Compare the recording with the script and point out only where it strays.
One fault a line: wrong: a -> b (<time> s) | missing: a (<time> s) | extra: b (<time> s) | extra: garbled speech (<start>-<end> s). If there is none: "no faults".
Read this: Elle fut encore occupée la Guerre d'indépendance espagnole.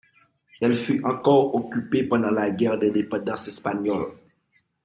extra: pendant (2.1 s)